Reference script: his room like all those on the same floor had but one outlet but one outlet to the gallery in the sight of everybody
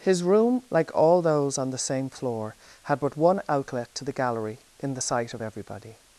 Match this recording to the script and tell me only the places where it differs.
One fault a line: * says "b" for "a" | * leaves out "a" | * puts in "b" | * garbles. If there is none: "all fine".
* leaves out "but one outlet"